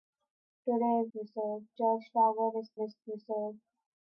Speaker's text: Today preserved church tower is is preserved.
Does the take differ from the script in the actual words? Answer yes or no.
no